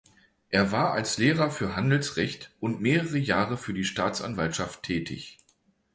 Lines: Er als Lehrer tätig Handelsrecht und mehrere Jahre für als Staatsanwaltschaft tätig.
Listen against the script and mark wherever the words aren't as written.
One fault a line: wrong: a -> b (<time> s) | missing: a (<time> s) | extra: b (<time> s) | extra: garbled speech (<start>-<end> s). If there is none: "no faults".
extra: war (0.7 s)
wrong: tätig -> für (1.5 s)
wrong: als -> die (3.7 s)